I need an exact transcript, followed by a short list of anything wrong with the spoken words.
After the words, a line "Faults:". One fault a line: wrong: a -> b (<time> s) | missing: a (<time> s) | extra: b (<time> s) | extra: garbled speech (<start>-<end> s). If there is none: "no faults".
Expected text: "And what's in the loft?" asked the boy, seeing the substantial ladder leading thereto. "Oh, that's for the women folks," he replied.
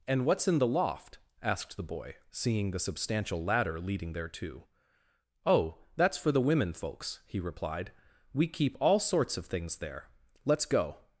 "And what's in the loft?" asked the boy, seeing the substantial ladder leading thereto. "Oh, that's for the women folks," he replied. "We keep all sorts of things there. Let's go
Faults:
extra: We keep all sorts of things there Let's go (8.3 s)